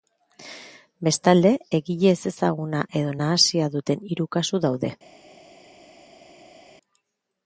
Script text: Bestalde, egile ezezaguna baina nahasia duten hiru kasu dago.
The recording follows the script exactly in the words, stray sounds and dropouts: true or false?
false